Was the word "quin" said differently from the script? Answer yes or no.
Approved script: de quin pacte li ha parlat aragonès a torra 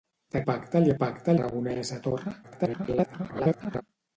yes